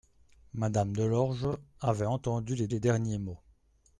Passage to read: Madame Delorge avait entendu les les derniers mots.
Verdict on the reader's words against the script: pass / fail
pass